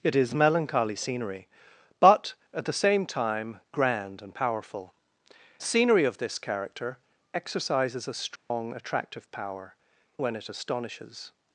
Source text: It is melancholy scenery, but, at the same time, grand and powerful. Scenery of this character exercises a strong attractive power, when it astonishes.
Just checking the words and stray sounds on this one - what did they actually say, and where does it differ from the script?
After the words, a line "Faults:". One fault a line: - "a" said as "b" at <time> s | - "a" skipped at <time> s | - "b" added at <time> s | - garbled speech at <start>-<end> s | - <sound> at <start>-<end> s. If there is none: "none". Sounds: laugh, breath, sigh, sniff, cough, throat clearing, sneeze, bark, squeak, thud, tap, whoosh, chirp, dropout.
It is melancholy scenery, but, at the same time, grand and powerful. Scenery of this character exercises a strong attractive power, when it astonishes.
Faults:
- dropout at 8.4-8.5 s